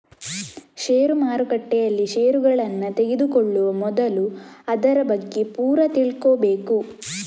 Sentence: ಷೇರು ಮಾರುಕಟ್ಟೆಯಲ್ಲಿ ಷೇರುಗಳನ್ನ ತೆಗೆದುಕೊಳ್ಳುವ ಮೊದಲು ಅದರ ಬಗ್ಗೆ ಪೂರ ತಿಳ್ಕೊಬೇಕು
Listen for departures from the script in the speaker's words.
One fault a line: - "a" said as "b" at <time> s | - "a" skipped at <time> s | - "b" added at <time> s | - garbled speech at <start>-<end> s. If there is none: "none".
none